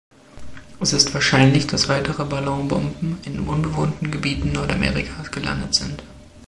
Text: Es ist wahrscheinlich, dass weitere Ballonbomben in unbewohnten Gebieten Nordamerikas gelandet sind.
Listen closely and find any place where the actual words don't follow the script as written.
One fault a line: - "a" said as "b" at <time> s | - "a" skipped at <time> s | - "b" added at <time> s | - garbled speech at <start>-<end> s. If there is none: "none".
none